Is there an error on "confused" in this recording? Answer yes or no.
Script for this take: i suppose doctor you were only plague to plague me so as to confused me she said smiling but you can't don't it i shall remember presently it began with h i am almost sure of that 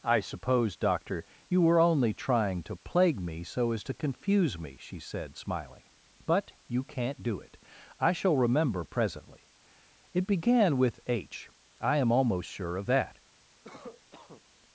yes